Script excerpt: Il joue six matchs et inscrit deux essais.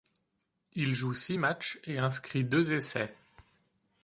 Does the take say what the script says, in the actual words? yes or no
yes